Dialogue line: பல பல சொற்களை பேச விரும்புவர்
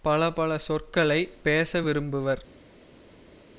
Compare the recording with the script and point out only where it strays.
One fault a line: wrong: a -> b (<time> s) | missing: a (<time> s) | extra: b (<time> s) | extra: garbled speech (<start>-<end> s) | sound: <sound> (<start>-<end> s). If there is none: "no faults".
no faults